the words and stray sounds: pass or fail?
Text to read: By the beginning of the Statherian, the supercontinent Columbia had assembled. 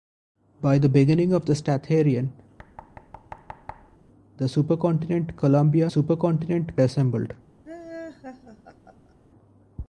fail